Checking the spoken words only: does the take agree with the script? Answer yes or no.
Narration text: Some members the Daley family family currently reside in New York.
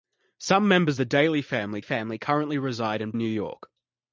yes